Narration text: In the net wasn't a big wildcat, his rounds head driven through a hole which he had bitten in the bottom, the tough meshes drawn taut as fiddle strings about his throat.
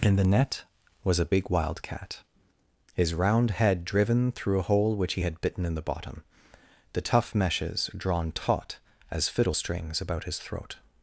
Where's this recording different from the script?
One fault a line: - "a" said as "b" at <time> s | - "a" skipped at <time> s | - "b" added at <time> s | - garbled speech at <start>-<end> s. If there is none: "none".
- "wasn't" said as "was" at 1.0 s
- "rounds" said as "round" at 3.1 s